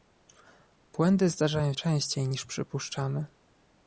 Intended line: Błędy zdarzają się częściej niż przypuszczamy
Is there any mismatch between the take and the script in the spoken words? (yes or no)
yes